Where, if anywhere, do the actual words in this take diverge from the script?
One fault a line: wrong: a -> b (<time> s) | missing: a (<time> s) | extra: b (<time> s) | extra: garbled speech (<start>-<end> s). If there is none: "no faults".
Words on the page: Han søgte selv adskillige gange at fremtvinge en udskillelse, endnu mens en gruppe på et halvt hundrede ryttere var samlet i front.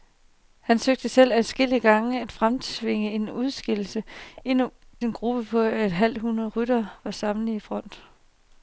missing: mens (4.7 s)